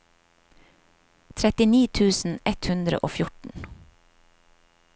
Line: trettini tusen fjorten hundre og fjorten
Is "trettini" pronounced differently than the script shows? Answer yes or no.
no